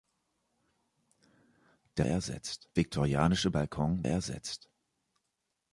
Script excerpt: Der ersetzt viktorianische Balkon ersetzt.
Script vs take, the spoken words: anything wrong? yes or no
no